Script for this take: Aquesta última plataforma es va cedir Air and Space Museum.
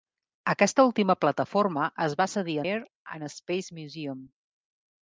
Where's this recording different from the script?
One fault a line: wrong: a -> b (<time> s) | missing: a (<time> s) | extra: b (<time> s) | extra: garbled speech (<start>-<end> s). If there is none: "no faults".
no faults